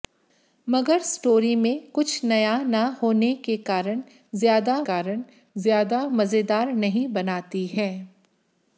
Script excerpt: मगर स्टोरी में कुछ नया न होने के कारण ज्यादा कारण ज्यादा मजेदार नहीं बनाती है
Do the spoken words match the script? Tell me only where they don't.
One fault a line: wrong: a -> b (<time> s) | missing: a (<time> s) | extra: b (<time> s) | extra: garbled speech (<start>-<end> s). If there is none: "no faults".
no faults